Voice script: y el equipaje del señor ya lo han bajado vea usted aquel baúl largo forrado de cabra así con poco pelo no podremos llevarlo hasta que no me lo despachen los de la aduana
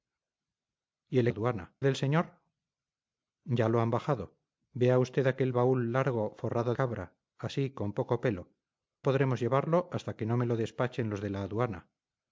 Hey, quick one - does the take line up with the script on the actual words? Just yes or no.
no